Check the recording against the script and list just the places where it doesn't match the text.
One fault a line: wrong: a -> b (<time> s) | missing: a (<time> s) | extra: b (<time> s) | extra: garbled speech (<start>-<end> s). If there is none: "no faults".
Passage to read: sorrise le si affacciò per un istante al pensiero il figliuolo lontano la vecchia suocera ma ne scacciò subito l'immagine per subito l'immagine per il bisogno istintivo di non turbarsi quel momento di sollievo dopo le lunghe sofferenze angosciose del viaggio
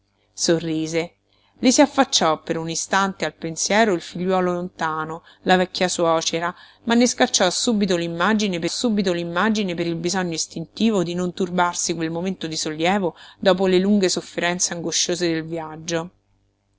no faults